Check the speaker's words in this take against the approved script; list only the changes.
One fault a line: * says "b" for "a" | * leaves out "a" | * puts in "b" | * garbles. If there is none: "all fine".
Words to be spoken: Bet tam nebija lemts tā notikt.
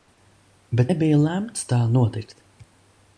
* leaves out "tam"